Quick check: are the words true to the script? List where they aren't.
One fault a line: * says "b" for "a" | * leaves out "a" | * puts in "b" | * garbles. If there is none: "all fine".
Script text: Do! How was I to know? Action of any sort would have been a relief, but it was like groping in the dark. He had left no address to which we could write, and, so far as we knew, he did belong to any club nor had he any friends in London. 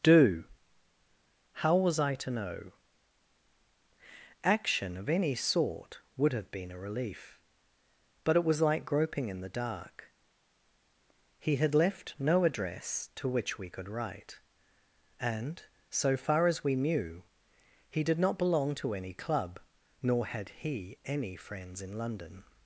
* puts in "not"